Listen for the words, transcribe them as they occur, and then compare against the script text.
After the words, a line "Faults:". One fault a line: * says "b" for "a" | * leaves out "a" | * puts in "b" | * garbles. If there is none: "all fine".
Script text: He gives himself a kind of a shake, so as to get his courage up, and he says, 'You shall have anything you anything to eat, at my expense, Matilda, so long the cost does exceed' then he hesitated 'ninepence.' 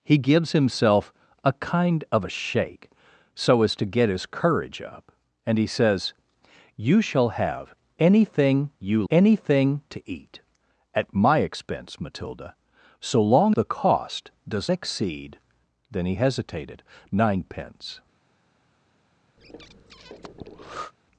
He gives himself a kind of a shake, so as to get his courage up, and he says, 'You shall have anything you anything to eat, at my expense, Matilda, so long the cost does exceed' then he hesitated 'ninepence.'
Faults:
all fine